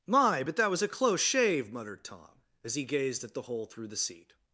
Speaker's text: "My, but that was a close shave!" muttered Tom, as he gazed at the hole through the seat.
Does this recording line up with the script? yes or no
yes